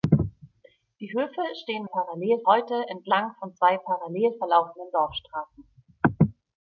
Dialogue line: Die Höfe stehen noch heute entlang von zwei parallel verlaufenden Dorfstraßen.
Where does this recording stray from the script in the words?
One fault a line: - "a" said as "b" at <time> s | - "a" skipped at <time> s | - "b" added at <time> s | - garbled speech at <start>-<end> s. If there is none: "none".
- "noch" said as "parallel" at 1.8 s